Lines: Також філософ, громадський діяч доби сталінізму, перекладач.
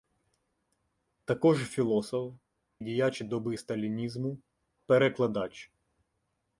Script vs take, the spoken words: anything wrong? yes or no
yes